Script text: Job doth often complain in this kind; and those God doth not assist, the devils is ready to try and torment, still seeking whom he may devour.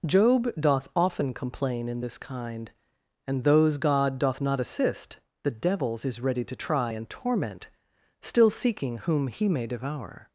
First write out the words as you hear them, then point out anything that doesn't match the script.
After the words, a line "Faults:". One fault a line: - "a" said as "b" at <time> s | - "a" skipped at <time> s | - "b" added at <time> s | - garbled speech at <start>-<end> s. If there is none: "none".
Job doth often complain in this kind; and those God doth not assist, the devils is ready to try and torment, still seeking whom he may devour.
Faults:
none